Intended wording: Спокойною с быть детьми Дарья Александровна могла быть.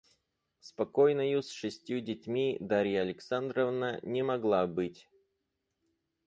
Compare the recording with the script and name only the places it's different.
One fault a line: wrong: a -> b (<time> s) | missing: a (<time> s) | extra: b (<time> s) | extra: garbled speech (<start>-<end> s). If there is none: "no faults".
wrong: быть -> шестью (1.5 s)
extra: не (4.0 s)